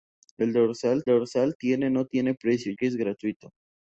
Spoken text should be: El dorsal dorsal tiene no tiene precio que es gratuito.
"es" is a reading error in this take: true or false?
false